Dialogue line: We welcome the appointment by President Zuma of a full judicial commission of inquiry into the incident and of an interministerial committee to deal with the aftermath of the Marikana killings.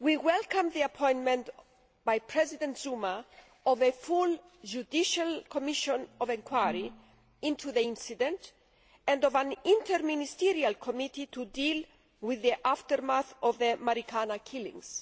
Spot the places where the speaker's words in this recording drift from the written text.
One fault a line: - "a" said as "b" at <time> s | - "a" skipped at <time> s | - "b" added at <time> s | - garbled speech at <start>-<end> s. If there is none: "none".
none